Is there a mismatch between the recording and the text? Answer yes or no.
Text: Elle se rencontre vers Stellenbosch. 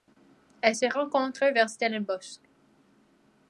no